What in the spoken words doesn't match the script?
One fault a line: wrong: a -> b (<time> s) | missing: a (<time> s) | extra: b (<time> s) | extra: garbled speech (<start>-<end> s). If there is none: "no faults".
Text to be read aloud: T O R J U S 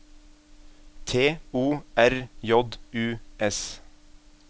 no faults